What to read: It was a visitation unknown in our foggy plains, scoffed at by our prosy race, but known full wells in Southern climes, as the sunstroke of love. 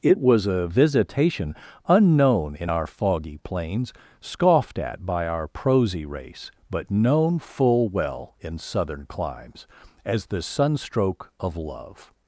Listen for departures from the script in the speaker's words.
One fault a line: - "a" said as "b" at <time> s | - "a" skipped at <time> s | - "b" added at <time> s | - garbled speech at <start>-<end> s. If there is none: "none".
- "wells" said as "well" at 7.9 s